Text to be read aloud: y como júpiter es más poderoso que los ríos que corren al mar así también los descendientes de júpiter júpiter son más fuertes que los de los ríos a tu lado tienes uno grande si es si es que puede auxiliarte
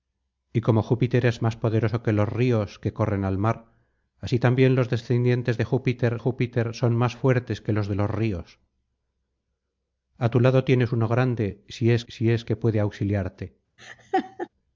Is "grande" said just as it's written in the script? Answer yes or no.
yes